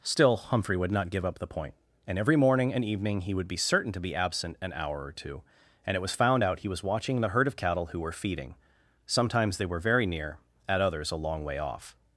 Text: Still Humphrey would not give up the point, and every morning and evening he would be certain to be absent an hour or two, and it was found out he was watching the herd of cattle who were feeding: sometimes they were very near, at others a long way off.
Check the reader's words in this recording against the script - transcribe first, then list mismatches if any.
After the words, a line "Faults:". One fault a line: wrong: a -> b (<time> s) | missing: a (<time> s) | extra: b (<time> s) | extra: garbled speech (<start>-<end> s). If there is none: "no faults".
Still Humphrey would not give up the point, and every morning and evening he would be certain to be absent an hour or two, and it was found out he was watching the herd of cattle who were feeding: sometimes they were very near, at others a long way off.
Faults:
no faults